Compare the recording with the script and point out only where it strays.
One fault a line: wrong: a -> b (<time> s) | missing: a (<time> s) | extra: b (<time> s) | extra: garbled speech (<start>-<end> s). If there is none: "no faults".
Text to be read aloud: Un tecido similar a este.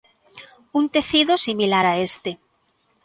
no faults